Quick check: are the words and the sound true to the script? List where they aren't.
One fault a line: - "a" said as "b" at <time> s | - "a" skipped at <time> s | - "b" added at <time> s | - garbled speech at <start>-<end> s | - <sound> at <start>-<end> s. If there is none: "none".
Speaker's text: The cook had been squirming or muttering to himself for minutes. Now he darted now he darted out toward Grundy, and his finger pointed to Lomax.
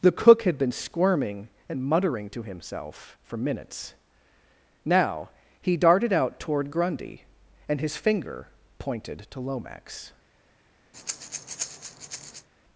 - "or" said as "and" at 1.7 s
- "now he darted" skipped at 6.1 s
- breath at 10.9-12.5 s